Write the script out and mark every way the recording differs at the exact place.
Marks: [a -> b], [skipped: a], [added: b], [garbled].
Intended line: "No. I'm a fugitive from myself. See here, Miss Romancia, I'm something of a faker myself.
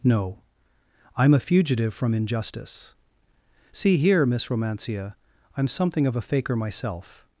"No. I'm a fugitive from [myself. -> injustice] See here, Miss Romancia, I'm something of a faker myself.